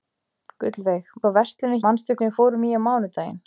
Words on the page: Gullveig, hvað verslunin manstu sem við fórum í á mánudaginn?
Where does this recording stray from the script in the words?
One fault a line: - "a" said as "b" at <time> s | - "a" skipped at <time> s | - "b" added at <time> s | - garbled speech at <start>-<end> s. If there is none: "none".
none